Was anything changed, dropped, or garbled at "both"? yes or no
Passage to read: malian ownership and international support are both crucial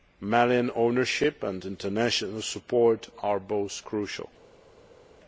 no